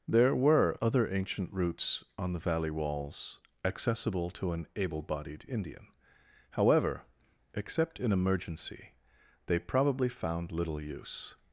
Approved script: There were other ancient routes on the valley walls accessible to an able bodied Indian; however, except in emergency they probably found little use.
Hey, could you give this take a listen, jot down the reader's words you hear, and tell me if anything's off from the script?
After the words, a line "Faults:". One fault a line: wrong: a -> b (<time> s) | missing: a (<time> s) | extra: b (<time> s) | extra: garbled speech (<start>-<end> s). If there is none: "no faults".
There were other ancient routes on the valley walls accessible to an able bodied Indian; however, except in emergency they probably found little use.
Faults:
no faults